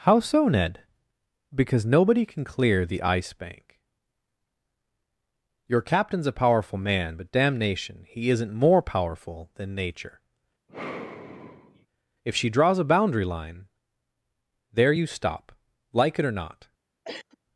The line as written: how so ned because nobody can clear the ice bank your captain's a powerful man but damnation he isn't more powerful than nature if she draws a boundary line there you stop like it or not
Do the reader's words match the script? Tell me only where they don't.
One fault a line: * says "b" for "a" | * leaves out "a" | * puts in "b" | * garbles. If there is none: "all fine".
all fine